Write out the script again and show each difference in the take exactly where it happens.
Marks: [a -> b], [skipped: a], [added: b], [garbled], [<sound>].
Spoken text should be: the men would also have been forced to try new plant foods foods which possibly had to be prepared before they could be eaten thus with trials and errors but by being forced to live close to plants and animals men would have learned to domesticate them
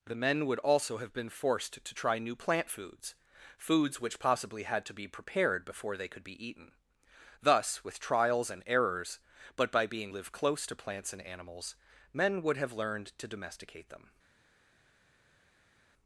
the men would also have been forced to try new plant foods foods which possibly had to be prepared before they could be eaten thus with trials and errors but by being [skipped: forced to] live close to plants and animals men would have learned to domesticate them